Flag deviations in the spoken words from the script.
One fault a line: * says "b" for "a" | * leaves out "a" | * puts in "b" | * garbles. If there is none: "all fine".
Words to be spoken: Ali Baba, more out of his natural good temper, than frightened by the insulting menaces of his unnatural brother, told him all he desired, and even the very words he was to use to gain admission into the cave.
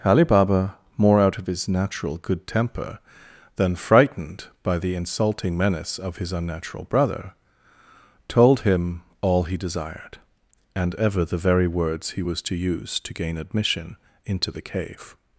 * says "menace" for "menaces"
* says "ever" for "even"